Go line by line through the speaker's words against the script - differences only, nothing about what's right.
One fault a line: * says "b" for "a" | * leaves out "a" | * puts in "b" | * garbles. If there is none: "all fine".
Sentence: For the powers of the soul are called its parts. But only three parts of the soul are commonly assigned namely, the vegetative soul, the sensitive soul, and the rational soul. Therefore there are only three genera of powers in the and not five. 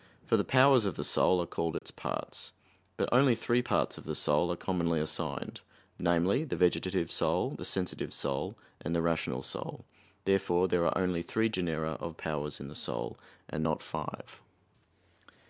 * puts in "soul"